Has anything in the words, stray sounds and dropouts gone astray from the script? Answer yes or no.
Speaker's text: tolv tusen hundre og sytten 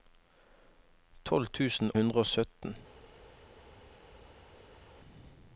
no